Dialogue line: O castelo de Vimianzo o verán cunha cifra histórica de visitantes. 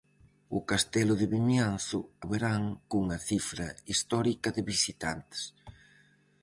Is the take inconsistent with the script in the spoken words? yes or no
no